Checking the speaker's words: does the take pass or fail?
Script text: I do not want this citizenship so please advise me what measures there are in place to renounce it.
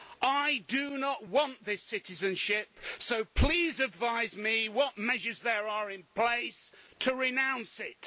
pass